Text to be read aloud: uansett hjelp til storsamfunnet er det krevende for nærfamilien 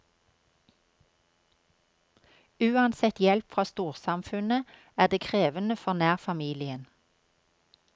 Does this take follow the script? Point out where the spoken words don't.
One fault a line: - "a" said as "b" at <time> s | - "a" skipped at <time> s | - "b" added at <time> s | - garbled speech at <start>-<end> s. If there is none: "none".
- "til" said as "fra" at 3.5 s